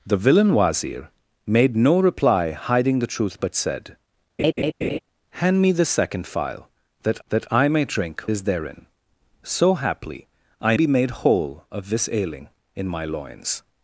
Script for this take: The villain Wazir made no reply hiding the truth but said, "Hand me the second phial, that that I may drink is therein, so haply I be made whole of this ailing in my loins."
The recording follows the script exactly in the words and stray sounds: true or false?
false